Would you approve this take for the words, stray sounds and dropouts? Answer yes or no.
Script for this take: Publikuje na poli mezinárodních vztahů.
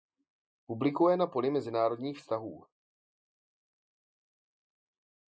yes